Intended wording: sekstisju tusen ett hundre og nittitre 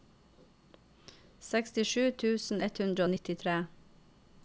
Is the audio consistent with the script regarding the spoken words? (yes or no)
yes